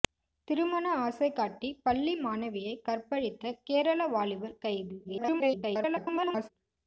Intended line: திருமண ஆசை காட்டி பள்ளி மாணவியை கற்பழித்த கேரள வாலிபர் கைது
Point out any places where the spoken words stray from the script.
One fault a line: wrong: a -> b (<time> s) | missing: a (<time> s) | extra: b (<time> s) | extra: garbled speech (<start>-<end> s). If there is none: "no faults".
extra: garbled speech (5.0-6.5 s)